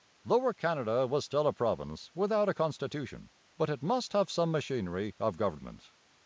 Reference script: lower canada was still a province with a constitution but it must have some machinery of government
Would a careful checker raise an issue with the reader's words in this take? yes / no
yes